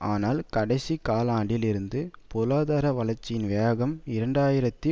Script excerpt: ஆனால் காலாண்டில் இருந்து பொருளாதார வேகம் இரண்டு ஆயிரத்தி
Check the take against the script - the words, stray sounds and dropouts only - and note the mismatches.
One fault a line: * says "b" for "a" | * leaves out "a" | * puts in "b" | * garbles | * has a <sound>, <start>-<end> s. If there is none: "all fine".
* puts in "கடைசி"
* puts in "வளர்ச்சியின்"